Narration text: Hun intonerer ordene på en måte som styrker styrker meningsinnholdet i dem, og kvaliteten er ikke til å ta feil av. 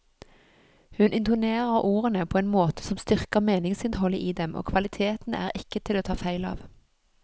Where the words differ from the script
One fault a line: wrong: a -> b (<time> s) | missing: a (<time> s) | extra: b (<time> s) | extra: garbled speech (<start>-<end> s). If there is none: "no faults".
missing: styrker (3.4 s)